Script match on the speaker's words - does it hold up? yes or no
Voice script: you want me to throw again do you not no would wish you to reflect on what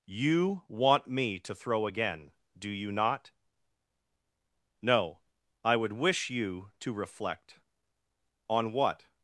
no